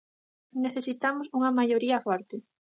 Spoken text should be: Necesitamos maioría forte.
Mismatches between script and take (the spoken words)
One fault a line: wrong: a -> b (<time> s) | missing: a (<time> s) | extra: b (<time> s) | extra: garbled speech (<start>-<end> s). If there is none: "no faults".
extra: unha (1.4 s)